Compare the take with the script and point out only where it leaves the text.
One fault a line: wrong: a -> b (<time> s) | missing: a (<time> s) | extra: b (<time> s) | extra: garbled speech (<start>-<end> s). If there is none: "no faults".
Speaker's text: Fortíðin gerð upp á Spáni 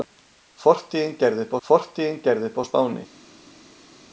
extra: fortíðin gerð upp (1.7 s)